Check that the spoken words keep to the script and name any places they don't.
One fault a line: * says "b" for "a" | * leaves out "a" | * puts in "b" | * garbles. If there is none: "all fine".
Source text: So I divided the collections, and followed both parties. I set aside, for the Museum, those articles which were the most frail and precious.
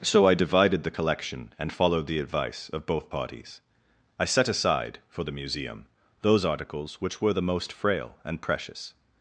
* says "collection" for "collections"
* puts in "the advice of"